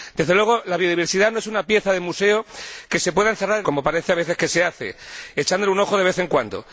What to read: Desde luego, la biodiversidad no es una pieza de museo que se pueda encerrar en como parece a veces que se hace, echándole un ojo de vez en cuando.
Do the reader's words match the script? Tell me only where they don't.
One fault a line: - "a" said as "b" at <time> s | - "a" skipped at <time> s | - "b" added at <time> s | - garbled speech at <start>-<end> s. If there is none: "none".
none